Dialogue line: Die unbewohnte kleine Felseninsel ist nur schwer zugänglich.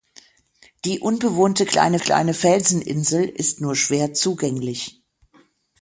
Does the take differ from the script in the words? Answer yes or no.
yes